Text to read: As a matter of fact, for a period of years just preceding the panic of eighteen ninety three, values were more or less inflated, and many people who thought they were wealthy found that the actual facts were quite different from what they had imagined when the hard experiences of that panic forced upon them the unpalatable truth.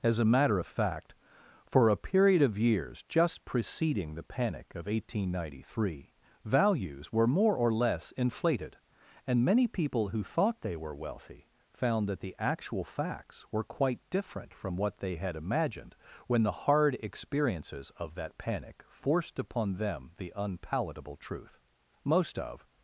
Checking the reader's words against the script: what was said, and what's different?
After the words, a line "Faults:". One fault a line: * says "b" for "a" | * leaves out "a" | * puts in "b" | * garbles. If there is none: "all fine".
As a matter of fact, for a period of years just preceding the panic of eighteen ninety three, values were more or less inflated, and many people who thought they were wealthy found that the actual facts were quite different from what they had imagined when the hard experiences of that panic forced upon them the unpalatable truth. Most of
Faults:
* puts in "Most of"